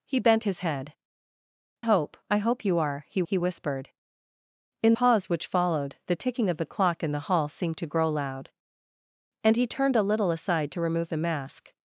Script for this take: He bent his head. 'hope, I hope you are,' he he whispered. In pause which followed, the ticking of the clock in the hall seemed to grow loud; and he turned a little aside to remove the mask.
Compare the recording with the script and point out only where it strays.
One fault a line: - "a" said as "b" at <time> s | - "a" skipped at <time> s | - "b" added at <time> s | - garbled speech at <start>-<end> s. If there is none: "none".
none